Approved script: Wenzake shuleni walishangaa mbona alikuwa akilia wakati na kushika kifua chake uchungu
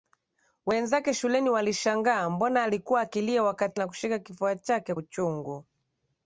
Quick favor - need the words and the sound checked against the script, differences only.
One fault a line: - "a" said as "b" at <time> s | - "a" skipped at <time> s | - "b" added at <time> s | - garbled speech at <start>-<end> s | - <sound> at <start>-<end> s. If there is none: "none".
none